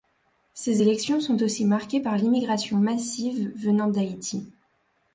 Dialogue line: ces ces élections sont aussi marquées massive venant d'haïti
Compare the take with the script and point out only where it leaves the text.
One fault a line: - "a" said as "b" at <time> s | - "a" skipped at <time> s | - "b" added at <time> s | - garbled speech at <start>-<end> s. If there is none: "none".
- "ces" skipped at 0.8 s
- "par l'immigration" added at 2.0 s